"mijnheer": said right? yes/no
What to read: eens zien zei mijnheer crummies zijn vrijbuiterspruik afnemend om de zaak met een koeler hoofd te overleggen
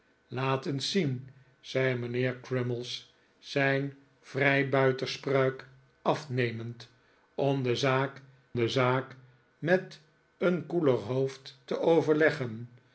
yes